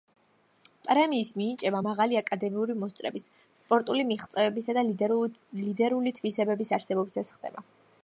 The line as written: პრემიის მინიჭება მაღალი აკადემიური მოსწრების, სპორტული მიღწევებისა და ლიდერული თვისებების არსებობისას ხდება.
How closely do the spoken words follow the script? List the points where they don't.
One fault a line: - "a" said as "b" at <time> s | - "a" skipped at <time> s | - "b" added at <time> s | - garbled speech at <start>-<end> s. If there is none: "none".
none